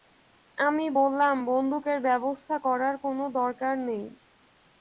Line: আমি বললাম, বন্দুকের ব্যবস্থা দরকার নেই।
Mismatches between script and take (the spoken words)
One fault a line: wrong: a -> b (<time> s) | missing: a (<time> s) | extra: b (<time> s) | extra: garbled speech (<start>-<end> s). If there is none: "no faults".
extra: করার কোনো (2.7 s)